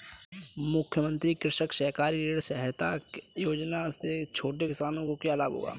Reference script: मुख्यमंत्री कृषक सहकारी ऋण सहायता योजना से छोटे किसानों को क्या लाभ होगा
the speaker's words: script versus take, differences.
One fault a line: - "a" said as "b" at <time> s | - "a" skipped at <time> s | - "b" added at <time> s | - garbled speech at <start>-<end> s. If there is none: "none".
none